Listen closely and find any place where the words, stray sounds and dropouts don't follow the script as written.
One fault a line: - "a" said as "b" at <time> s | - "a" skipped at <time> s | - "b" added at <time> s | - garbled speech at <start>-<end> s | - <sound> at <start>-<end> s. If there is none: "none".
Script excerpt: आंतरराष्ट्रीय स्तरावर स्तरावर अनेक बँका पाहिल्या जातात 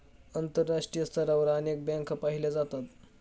- "स्तरावर" skipped at 1.5 s